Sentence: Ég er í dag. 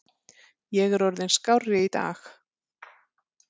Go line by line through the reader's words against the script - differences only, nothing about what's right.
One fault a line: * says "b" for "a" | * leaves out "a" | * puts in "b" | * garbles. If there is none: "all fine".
* puts in "orðinn skárri"